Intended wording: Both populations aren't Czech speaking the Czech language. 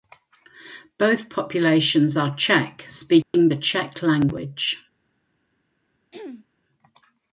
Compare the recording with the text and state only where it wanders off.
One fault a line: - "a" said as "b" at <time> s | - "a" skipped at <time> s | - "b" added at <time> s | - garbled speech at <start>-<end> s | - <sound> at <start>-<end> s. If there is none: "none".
- "aren't" said as "are" at 2.2 s
- dropout at 3.2-3.3 s
- throat clearing at 6.1-6.5 s